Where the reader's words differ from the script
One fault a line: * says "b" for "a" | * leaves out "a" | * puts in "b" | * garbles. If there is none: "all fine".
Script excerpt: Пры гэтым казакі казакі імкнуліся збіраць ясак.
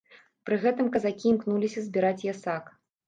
* leaves out "казакі"